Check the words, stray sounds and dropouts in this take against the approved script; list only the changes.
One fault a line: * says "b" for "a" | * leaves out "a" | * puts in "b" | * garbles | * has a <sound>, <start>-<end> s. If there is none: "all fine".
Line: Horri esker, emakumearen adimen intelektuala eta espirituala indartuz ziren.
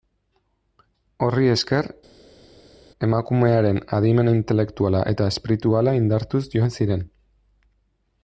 * puts in "joan"